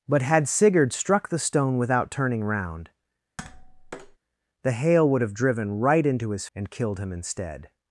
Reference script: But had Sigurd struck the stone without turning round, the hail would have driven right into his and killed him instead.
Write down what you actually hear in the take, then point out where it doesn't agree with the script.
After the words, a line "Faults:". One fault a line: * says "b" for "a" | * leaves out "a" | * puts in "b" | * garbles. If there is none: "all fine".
But had Sigurd struck the stone without turning round, the hail would have driven right into his and killed him instead.
Faults:
all fine